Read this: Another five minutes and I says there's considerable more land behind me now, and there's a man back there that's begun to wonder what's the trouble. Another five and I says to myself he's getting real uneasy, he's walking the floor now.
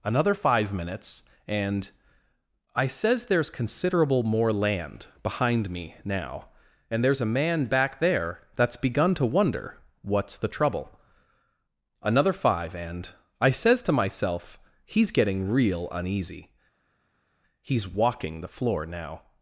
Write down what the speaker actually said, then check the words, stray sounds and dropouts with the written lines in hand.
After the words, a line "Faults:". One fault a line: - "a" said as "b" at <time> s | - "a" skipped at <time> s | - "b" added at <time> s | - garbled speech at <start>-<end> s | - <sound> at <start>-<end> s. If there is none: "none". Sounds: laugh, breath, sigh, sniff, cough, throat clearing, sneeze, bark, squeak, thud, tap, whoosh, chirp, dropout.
Another five minutes and I says there's considerable more land behind me now, and there's a man back there that's begun to wonder what's the trouble. Another five and I says to myself he's getting real uneasy, he's walking the floor now.
Faults:
none